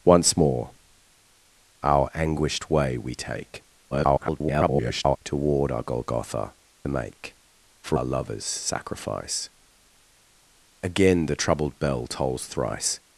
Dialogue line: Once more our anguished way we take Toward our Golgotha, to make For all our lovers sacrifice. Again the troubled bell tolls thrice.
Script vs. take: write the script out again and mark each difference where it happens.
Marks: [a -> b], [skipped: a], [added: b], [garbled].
Once more our anguished way we take [garbled] Toward our Golgotha, [skipped: to] make For [skipped: all] our lovers sacrifice. Again the troubled bell tolls thrice.